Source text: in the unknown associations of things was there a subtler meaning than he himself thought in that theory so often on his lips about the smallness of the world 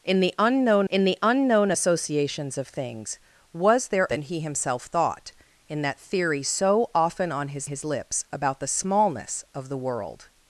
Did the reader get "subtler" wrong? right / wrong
wrong